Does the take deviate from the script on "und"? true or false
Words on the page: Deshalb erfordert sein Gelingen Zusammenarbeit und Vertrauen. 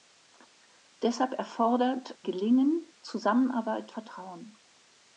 true